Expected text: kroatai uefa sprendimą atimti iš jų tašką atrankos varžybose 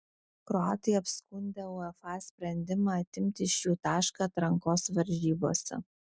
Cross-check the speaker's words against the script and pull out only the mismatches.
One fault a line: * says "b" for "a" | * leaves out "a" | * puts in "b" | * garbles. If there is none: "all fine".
* puts in "apskundė"